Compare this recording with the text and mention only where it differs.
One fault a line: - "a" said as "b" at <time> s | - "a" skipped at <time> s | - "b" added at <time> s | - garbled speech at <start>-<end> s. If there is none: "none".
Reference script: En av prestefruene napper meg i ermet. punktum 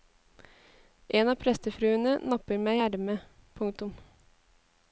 none